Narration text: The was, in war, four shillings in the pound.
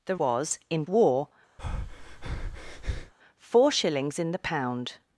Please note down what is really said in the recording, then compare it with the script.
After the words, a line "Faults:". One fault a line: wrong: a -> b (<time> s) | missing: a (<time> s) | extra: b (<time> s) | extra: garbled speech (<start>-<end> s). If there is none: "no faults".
The was, in war, four shillings in the pound.
Faults:
no faults